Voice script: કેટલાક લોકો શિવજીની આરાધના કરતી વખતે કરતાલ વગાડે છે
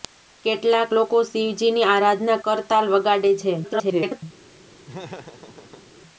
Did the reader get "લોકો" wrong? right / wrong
right